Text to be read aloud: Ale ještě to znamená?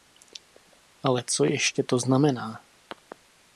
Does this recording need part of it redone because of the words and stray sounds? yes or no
yes